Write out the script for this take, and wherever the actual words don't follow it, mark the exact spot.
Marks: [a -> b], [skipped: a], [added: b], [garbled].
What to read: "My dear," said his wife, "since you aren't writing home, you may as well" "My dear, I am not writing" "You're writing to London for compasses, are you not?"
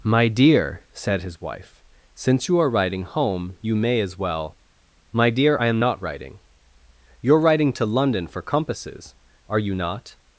"My dear," said his wife, "since you [aren't -> are] writing home, you may as well" "My dear, I am not writing" "You're writing to London for compasses, are you not?"